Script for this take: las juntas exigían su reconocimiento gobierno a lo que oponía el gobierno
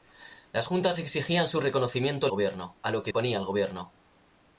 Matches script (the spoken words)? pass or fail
pass